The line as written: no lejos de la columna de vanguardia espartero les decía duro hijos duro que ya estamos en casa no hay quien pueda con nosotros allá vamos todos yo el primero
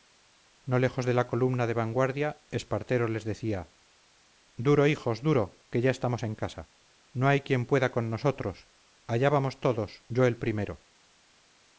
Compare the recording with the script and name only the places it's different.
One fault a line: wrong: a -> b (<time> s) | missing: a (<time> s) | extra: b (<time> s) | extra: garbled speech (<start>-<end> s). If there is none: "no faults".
no faults